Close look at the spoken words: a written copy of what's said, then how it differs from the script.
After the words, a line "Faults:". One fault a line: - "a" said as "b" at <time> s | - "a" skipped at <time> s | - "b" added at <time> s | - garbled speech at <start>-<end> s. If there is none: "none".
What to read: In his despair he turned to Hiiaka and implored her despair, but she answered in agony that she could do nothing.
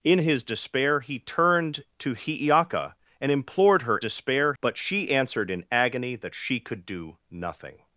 In his despair he turned to Hiiaka and implored her despair, but she answered in agony that she could do nothing.
Faults:
none